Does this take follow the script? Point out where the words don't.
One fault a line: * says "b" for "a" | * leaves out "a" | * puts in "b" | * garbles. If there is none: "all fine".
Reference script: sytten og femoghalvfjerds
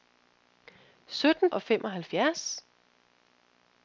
all fine